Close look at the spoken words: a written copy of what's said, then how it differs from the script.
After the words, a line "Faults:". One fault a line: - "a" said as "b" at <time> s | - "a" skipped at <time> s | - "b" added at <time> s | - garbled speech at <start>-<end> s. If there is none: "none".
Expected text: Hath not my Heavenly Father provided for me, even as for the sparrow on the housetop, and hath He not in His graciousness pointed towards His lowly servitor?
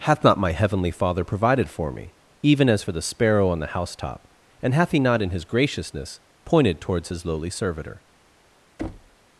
Hath not my Heavenly Father provided for me, even as for the sparrow on the housetop, and hath He not in His graciousness pointed towards His lowly servitor?
Faults:
none